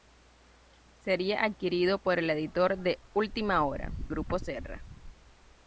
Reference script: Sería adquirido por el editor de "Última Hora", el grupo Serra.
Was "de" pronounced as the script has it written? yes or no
yes